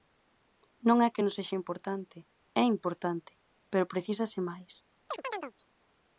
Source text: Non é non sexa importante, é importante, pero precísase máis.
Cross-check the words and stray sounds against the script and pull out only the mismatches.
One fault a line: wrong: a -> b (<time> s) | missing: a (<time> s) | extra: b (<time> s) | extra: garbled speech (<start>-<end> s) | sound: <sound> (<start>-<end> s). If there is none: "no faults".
extra: que (1.1 s)
sound: chirp (5.1-5.5 s)